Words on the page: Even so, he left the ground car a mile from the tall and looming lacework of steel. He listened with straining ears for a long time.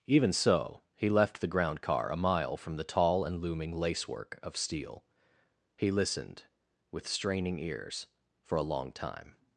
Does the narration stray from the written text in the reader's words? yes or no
no